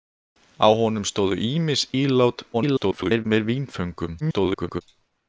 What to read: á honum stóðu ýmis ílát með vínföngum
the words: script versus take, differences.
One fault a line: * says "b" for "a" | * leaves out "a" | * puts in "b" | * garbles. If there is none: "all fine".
* garbles
* garbles